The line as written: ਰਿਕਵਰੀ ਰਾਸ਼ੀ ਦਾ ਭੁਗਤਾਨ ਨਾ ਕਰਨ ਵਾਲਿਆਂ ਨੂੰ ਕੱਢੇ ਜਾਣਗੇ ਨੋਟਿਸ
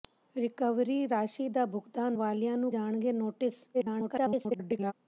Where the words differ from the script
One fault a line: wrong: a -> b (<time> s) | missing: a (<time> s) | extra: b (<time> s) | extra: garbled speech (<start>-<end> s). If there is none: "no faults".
missing: ਨਾ ਕਰਨ (2.1 s)
missing: ਕੱਢੇ (2.7 s)
extra: garbled speech (3.7-4.9 s)